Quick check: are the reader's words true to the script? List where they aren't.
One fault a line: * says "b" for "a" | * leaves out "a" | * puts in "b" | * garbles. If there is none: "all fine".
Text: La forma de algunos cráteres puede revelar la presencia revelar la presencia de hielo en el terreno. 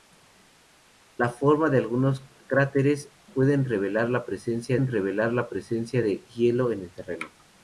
all fine